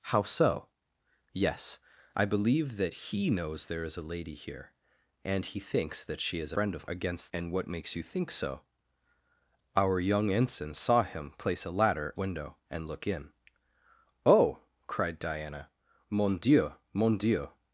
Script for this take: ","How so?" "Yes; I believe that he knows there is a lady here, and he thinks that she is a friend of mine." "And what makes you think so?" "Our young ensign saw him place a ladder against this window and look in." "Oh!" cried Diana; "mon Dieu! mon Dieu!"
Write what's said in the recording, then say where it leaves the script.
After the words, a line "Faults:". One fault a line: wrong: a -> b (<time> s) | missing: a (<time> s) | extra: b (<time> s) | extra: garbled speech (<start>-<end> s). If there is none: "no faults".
","How so?" "Yes; I believe that he knows there is a lady here, and he thinks that she is friend of against." "And what makes you think so?" "Our young ensign saw him place a ladder window and look in." "Oh!" cried Diana; "mon Dieu! mon Dieu!"
Faults:
missing: a (6.5 s)
wrong: mine -> against (6.9 s)
missing: against this (12.1 s)